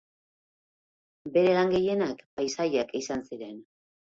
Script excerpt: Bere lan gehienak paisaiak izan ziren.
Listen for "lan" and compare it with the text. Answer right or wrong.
right